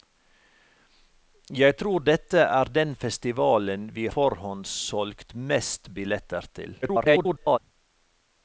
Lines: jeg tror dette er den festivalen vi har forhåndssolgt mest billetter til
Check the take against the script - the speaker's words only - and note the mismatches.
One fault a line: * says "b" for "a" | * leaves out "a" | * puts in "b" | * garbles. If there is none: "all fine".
* leaves out "har"
* garbles